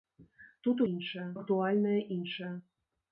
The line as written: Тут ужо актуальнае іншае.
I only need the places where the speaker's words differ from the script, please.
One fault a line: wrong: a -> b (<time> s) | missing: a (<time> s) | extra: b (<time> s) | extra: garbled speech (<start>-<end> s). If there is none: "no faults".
wrong: ужо -> іншае (0.9 s)